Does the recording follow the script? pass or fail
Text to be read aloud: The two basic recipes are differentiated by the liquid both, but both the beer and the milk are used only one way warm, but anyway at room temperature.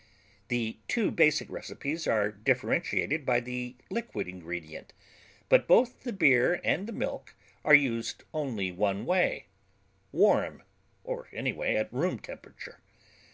fail